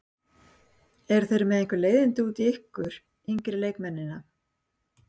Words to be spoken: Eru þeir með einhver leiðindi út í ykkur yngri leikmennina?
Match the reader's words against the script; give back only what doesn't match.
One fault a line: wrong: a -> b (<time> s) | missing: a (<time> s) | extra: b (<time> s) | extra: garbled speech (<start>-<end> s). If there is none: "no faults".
no faults